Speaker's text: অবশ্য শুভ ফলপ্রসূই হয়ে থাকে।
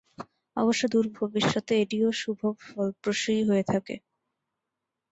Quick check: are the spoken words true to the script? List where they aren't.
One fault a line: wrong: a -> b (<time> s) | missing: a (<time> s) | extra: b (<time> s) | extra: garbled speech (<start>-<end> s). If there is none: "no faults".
extra: দূর ভবিষ্যতে এটিও (0.9 s)